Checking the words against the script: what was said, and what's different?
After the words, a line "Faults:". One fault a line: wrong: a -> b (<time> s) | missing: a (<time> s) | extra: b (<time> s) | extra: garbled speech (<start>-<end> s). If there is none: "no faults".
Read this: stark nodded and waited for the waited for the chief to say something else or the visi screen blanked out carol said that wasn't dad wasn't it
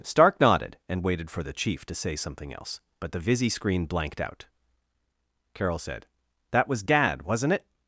stark nodded and waited for the chief to say something else but the visi screen blanked out carol said that was dad wasn't it
Faults:
missing: waited for the (1.5 s)
wrong: or -> but (3.0 s)
wrong: wasn't -> was (6.7 s)